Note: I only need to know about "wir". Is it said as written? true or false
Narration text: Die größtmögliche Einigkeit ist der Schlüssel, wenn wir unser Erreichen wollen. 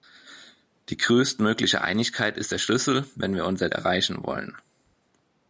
true